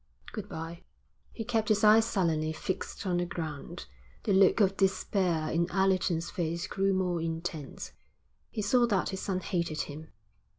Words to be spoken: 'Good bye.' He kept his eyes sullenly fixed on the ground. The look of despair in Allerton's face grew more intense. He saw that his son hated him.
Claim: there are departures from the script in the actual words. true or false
false